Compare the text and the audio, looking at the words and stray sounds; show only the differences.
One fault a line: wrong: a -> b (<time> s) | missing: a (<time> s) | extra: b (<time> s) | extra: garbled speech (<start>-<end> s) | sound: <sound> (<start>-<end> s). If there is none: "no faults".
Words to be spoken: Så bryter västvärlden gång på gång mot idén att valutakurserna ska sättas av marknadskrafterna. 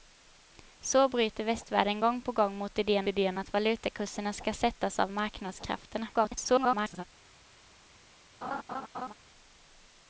extra: idén (3.1 s)
extra: garbled speech (6.1-7.0 s)
sound: laugh (8.4-9.1 s)